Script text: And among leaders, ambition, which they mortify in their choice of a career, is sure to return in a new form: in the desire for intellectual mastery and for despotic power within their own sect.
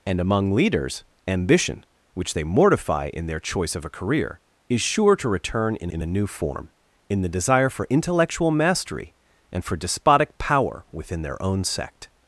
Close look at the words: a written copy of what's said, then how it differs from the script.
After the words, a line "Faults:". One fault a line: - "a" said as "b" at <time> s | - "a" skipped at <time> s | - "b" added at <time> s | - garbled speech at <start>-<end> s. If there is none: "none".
And among leaders, ambition, which they mortify in their choice of a career, is sure to return in in a new form: in the desire for intellectual mastery and for despotic power within their own sect.
Faults:
- "in" added at 5.9 s